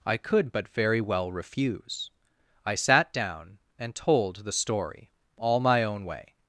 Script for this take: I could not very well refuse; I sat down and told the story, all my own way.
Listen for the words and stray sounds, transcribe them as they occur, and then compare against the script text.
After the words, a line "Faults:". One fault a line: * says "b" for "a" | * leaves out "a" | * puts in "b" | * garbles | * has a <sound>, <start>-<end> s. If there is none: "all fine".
I could but very well refuse; I sat down and told the story, all my own way.
Faults:
* says "but" for "not"